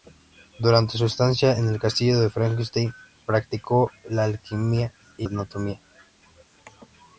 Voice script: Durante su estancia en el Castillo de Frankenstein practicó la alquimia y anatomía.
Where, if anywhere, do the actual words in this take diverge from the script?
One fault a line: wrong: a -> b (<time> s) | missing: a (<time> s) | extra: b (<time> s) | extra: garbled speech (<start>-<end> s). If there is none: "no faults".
no faults